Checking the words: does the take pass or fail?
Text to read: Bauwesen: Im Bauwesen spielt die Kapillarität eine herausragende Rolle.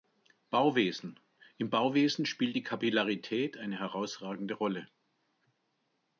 pass